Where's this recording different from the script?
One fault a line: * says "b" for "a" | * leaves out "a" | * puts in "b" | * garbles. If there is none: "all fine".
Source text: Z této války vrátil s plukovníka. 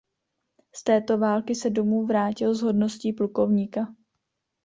* puts in "se domů"
* puts in "hodností"